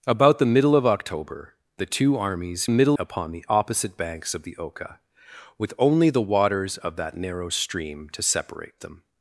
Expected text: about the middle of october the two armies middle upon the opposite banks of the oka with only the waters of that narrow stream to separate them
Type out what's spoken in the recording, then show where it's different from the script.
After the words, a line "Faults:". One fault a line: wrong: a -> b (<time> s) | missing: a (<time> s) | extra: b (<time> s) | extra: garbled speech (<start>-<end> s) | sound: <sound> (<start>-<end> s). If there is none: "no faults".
about the middle of october the two armies middle upon the opposite banks of the oka with only the waters of that narrow stream to separate them
Faults:
no faults